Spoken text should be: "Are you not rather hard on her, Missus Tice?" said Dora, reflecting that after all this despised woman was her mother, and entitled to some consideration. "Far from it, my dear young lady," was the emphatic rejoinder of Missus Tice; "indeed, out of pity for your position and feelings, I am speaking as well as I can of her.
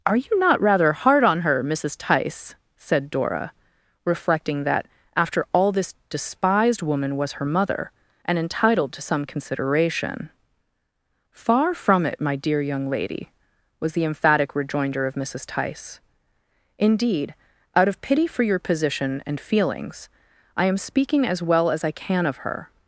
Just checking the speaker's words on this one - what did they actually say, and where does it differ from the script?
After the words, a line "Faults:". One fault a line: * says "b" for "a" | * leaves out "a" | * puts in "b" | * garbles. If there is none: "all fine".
"Are you not rather hard on her, Missus Tice?" said Dora, reflecting that after all this despised woman was her mother, and entitled to some consideration. "Far from it, my dear young lady," was the emphatic rejoinder of Missus Tice; "indeed, out of pity for your position and feelings, I am speaking as well as I can of her.
Faults:
all fine